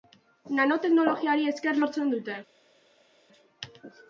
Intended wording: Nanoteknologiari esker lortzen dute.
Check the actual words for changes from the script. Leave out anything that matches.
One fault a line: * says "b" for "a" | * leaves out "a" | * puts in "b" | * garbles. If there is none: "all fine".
all fine